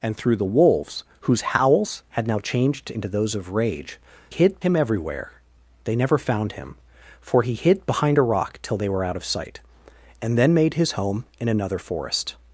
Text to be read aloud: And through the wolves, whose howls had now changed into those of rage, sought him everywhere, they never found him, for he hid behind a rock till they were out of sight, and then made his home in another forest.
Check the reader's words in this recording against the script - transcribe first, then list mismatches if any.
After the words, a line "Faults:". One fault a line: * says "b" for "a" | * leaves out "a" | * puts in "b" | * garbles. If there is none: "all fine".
And through the wolves, whose howls had now changed into those of rage, hid him everywhere, they never found him, for he hid behind a rock till they were out of sight, and then made his home in another forest.
Faults:
* says "hid" for "sought"